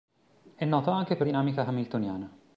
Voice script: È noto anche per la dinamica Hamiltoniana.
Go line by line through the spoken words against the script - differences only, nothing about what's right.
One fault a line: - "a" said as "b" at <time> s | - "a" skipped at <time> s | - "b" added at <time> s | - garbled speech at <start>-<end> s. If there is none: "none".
- "la" skipped at 1.3 s